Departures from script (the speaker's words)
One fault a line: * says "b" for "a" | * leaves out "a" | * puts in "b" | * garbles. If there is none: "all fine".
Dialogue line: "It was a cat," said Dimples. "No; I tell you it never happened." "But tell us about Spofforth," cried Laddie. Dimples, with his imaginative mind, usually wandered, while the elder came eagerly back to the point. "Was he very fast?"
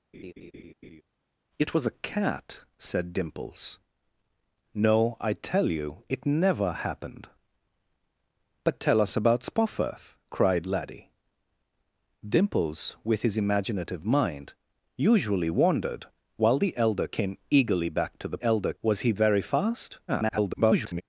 * says "elder" for "point"
* garbles